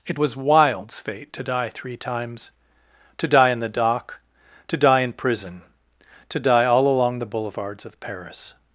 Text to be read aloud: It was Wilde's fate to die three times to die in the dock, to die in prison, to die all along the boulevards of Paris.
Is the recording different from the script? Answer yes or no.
no